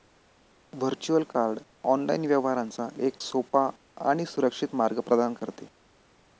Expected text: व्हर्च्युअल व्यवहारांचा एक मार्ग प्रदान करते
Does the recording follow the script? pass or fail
fail